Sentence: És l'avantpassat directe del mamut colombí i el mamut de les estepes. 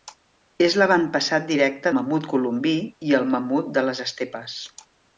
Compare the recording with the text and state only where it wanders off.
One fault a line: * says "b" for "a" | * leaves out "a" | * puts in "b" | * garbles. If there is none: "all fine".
* leaves out "del"